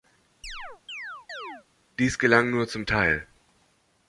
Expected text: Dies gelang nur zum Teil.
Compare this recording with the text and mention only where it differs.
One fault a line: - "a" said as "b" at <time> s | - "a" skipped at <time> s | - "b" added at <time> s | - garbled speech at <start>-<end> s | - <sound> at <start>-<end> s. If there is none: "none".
- chirp at 0.4-1.6 s